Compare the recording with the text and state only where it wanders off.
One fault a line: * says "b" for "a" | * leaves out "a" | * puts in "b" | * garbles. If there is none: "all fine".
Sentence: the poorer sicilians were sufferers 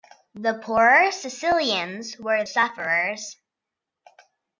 all fine